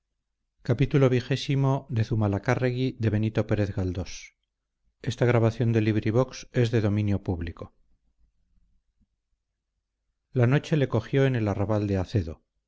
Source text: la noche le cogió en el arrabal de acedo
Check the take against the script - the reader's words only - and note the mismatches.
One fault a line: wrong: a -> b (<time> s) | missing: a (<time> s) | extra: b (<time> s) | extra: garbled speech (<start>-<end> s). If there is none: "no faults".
no faults